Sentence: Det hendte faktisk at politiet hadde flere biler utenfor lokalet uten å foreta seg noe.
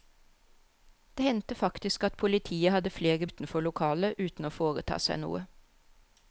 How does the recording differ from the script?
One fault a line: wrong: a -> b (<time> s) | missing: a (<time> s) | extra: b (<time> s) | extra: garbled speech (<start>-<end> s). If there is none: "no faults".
missing: biler (3.3 s)